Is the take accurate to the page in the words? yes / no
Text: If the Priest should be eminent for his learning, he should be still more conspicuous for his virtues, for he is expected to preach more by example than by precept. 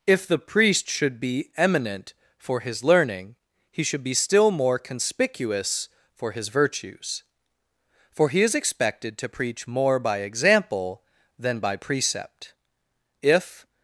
no